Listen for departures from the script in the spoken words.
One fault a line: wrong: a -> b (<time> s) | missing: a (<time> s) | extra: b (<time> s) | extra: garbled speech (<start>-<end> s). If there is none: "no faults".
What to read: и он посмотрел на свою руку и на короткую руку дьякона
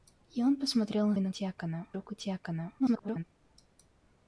missing: свою руку (1.1 s)
wrong: короткую -> дьякона (1.3 s)
extra: garbled speech (2.8-3.2 s)